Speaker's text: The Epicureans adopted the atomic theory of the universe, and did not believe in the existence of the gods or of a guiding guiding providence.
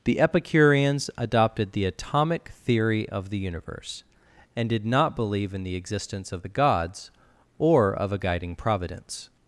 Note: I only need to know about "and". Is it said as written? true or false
true